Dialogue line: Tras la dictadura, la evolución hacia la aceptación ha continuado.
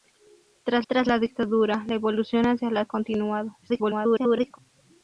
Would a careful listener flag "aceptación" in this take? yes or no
yes